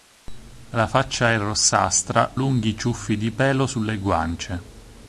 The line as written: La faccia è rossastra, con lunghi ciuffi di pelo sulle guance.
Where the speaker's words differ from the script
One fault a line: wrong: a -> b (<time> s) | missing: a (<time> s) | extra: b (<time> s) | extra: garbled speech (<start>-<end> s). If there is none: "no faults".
missing: con (2.3 s)